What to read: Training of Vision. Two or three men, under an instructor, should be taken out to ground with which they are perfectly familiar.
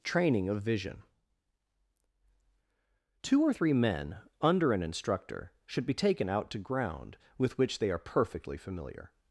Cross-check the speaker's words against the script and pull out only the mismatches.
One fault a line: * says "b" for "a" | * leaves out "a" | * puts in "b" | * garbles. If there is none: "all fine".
all fine